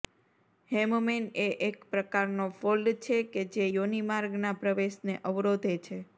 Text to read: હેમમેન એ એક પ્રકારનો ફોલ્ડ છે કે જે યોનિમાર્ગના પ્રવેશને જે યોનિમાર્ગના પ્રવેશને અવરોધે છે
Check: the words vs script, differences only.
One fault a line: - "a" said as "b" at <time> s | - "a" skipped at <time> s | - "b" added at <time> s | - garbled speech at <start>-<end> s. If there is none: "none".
- "જે યોનિમાર્ગના પ્રવેશને" skipped at 5.1 s